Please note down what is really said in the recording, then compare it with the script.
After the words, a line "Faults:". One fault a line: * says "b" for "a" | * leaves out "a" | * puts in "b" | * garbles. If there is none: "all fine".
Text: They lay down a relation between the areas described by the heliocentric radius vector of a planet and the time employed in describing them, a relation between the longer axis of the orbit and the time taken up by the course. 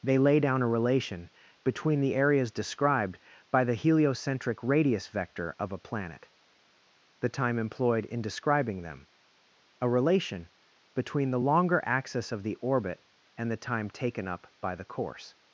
They lay down a relation between the areas described by the heliocentric radius vector of a planet the time employed in describing them, a relation between the longer axis of the orbit and the time taken up by the course.
Faults:
* leaves out "and"